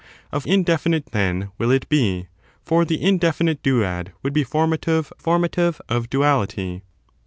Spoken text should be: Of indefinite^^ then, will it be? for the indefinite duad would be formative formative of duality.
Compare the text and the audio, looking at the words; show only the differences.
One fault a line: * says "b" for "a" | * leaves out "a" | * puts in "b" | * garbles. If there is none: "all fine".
all fine